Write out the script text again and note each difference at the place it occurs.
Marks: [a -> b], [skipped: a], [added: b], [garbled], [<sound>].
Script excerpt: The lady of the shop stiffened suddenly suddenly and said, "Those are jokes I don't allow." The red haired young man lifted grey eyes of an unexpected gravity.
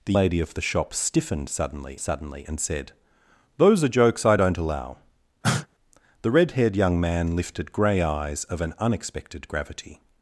The lady of the shop stiffened suddenly suddenly and said, "Those are jokes I don't allow." [cough] The red haired young man lifted grey eyes of an unexpected gravity.